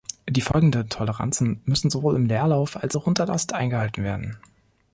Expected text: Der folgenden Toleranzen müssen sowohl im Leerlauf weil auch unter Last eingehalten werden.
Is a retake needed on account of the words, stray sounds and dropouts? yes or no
yes